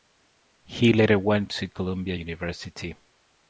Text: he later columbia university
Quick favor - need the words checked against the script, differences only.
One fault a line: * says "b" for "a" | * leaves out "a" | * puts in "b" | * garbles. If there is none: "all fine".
* puts in "went to"